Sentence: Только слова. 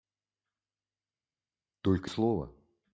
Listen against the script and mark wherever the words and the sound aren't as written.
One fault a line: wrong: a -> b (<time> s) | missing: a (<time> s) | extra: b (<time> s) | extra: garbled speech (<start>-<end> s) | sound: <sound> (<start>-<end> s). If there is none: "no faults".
no faults